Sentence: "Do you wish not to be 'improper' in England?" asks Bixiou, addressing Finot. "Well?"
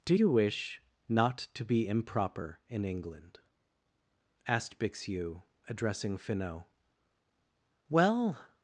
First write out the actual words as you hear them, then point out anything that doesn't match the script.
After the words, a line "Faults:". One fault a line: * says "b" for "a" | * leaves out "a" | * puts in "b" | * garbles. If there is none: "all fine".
"Do you wish not to be 'improper' in England?" asked Bixiou, addressing Finot. "Well?"
Faults:
* says "asked" for "asks"